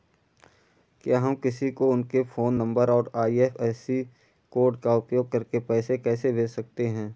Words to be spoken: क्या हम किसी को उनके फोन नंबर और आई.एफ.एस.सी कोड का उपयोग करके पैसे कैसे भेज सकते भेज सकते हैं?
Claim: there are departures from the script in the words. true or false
true